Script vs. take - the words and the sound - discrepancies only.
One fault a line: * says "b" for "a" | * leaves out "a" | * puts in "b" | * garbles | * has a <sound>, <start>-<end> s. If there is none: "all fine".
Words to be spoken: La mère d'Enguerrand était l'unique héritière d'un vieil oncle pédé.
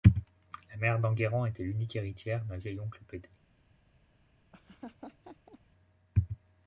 * has a laugh, 4.5-5.6 s